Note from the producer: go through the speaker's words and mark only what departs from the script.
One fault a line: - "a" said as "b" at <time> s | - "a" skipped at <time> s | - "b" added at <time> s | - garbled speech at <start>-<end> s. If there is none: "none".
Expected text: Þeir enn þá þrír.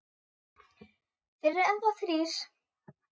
- "eru" added at 1.5 s